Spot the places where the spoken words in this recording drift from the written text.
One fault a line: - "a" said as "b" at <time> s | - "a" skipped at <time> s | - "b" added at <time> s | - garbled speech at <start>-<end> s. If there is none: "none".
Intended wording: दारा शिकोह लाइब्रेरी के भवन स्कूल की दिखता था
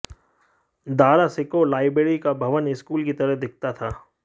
- "के" said as "का" at 2.2 s
- "तरह" added at 3.1 s